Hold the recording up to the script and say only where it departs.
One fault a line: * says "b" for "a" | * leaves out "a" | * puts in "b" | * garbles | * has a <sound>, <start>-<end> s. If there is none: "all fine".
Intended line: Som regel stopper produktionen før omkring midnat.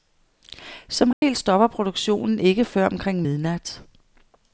* has a dropout, 1.1-1.2 s
* puts in "ikke"